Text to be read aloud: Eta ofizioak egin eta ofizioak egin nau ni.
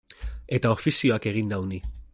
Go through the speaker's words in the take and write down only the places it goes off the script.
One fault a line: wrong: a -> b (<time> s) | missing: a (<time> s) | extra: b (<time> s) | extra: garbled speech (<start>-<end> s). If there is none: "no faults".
missing: eta ofizioak egin (1.5 s)